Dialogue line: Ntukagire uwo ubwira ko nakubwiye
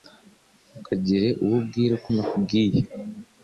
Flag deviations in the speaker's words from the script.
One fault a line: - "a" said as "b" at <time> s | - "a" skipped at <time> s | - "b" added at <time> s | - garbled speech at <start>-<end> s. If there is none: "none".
none